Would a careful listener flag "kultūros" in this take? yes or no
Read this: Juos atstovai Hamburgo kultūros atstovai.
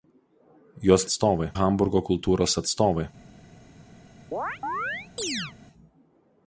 no